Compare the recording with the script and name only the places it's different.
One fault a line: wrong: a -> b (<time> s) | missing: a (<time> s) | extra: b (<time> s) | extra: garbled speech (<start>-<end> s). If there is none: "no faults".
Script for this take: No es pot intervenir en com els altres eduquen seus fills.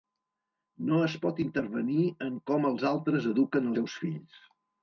no faults